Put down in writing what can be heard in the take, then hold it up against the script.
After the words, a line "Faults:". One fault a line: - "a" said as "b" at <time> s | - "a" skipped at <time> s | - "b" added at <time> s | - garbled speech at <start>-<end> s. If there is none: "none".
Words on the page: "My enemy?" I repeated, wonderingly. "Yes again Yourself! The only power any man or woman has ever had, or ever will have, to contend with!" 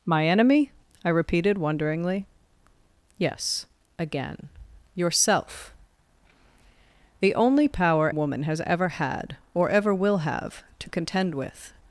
"My enemy?" I repeated, wonderingly. "Yes again Yourself! The only power woman has ever had, or ever will have, to contend with!"
Faults:
- "any man or" skipped at 8.1 s